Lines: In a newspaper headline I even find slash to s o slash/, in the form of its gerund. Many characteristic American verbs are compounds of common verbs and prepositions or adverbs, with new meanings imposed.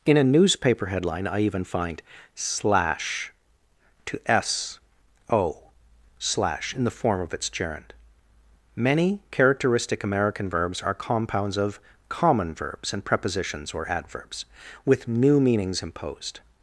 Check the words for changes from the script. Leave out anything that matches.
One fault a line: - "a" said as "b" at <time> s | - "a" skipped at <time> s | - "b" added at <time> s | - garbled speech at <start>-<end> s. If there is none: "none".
none